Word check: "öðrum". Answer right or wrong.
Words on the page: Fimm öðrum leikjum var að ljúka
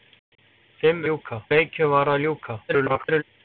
wrong